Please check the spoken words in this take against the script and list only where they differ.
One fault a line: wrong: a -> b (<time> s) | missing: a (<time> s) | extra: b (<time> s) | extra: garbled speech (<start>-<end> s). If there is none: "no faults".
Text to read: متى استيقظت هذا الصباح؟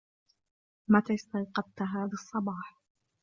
no faults